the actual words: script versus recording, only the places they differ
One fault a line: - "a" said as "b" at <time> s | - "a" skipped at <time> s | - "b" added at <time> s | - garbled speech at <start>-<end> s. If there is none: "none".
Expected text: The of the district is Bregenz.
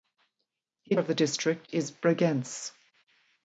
none